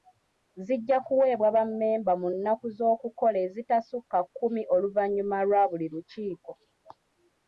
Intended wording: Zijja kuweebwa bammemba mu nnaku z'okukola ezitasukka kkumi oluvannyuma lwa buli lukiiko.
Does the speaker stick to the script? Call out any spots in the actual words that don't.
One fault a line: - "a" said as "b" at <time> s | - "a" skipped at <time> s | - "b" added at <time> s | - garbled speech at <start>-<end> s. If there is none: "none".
none